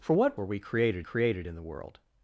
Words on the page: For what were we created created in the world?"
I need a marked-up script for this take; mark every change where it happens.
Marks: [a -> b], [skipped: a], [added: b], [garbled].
For what were we created created in the world?"